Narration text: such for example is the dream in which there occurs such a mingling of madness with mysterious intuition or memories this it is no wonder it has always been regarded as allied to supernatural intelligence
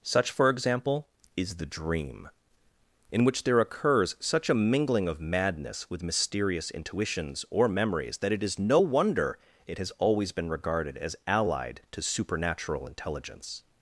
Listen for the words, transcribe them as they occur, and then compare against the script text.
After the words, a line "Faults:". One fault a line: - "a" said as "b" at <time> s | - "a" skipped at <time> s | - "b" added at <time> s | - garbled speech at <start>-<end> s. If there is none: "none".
such for example is the dream in which there occurs such a mingling of madness with mysterious intuitions or memories that it is no wonder it has always been regarded as allied to supernatural intelligence
Faults:
- "intuition" said as "intuitions" at 6.7 s
- "this" said as "that" at 8.2 s